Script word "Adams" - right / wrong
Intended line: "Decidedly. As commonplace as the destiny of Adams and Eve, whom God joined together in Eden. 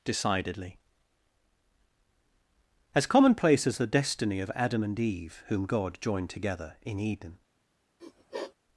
wrong